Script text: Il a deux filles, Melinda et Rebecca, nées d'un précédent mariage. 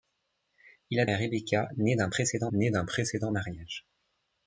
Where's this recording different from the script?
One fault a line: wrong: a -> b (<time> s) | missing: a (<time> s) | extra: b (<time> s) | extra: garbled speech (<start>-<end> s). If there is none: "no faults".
wrong: deux filles Melinda et Rebecca -> et Rebecca nées d'un précédent (1.1 s)